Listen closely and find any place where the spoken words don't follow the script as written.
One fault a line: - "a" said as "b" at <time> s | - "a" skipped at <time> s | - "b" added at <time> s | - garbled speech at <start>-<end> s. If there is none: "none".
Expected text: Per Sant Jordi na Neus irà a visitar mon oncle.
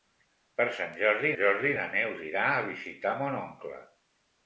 - "Jordi" added at 1.4 s